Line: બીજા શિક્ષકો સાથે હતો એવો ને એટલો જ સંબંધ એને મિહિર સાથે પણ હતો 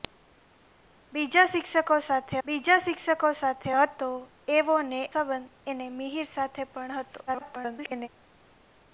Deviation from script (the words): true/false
true